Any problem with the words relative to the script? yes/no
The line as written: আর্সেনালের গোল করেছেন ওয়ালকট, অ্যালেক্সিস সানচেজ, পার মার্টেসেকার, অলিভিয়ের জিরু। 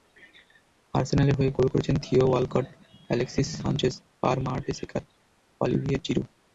yes